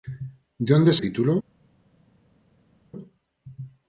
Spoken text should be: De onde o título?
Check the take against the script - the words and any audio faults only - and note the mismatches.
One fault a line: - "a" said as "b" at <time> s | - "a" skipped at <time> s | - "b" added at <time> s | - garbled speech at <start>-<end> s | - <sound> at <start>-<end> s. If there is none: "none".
none